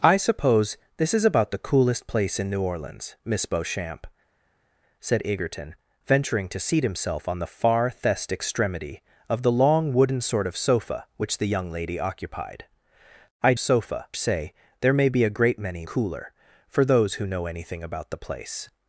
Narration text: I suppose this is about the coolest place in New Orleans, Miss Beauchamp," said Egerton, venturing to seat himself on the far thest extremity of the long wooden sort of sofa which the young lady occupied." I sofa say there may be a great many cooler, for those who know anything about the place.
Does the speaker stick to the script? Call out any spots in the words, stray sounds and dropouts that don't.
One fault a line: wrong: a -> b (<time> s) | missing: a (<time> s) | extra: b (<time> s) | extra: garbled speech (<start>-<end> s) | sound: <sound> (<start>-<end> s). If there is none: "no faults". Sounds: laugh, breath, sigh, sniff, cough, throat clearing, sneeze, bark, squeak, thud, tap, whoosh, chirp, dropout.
no faults